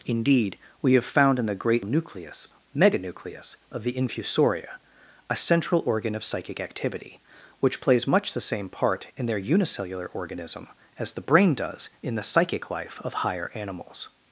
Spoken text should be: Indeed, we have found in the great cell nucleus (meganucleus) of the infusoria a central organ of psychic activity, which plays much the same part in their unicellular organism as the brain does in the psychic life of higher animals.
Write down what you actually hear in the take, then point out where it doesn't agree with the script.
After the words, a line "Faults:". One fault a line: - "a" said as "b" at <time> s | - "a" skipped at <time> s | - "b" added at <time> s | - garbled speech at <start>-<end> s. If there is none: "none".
Indeed, we have found in the great nucleus (meganucleus) of the infusoria a central organ of psychic activity, which plays much the same part in their unicellular organism as the brain does in the psychic life of higher animals.
Faults:
- "cell" skipped at 1.9 s